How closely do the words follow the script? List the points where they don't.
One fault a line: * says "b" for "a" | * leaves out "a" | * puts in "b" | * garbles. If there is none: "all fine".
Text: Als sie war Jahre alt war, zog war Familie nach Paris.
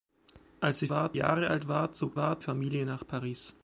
all fine